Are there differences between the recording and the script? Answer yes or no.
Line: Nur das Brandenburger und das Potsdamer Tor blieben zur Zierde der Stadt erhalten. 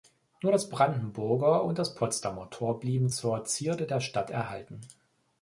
no